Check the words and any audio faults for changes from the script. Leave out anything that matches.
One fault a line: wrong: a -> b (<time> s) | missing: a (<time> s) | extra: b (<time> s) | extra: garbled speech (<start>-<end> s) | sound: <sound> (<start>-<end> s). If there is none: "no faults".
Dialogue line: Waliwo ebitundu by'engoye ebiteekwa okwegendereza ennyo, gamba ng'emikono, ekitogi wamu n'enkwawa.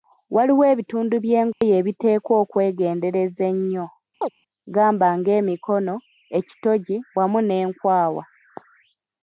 sound: dropout (1.5-1.6 s)
sound: chirp (4.2-4.3 s)